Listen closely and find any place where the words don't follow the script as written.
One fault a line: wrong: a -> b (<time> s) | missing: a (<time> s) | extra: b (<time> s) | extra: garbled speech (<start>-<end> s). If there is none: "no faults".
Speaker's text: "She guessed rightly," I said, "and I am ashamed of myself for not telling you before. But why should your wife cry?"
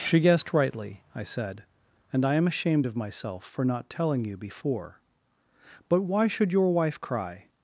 no faults